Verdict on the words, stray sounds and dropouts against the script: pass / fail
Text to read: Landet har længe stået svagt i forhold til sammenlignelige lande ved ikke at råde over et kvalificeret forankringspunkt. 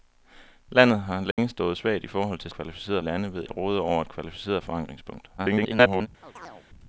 fail